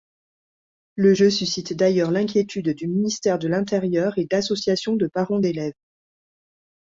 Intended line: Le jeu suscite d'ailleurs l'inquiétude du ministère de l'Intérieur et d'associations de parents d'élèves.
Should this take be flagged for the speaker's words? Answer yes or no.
no